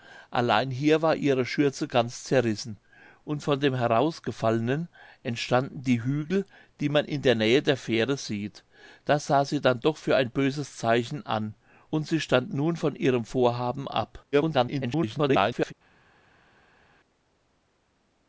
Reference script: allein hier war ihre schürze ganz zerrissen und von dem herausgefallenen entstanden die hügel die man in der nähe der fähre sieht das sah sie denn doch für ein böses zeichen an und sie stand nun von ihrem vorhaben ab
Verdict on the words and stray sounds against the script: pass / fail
fail